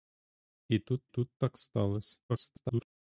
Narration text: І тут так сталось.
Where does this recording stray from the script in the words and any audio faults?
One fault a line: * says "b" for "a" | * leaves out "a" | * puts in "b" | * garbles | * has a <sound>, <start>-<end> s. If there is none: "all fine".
* puts in "тут"
* garbles